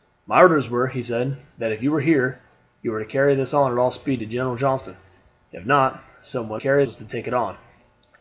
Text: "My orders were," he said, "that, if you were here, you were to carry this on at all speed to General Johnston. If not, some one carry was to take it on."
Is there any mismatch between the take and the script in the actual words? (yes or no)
no